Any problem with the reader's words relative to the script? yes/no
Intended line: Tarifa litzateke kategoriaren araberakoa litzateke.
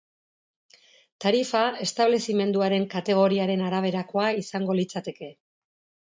yes